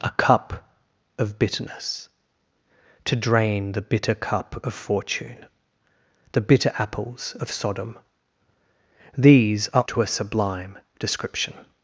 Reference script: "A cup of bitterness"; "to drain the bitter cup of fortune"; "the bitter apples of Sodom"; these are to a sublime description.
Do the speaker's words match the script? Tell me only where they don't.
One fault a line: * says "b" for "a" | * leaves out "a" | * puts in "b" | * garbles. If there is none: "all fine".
all fine